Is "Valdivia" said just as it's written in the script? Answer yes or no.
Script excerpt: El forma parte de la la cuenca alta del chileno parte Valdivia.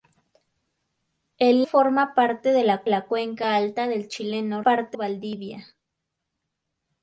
yes